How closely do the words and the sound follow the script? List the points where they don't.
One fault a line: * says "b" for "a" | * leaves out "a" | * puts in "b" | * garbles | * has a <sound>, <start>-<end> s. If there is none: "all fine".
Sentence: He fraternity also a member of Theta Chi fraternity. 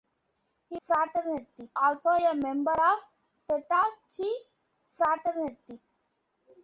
all fine